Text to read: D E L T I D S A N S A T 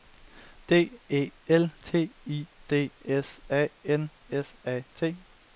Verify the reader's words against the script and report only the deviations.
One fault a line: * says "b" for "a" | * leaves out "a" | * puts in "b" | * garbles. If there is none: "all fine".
all fine